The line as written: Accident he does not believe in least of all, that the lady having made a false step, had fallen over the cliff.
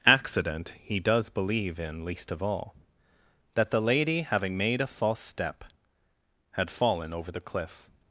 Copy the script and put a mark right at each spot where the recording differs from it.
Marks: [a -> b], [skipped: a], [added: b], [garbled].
Accident he does [skipped: not] believe in least of all, that the lady having made a false step, had fallen over the cliff.